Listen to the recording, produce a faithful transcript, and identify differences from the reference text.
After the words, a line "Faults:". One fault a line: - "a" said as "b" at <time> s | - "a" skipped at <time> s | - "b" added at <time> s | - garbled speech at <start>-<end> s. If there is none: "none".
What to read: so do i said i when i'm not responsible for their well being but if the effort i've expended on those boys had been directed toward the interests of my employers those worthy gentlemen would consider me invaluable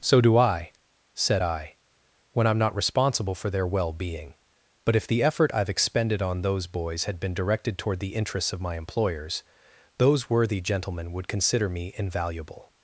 so do i said i when i'm not responsible for their well being but if the effort i've expended on those boys had been directed toward the interests of my employers those worthy gentlemen would consider me invaluable
Faults:
none